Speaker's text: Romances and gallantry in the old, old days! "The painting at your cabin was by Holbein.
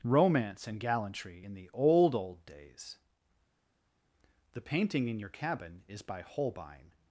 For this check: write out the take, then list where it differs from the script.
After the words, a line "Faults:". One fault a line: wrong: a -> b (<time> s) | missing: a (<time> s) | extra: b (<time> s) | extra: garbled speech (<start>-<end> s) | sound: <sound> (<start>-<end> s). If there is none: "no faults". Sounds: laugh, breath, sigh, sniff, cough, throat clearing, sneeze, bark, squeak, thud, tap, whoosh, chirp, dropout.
Romance and gallantry in the old, old days! "The painting in your cabin is by Holbein.
Faults:
wrong: Romances -> Romance (0.0 s)
wrong: at -> in (5.1 s)
wrong: was -> is (5.9 s)